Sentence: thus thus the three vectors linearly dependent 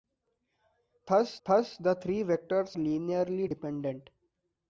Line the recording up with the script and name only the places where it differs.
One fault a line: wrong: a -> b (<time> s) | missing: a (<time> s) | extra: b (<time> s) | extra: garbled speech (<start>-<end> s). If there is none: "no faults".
no faults